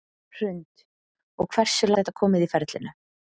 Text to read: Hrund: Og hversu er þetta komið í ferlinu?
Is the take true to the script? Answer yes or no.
yes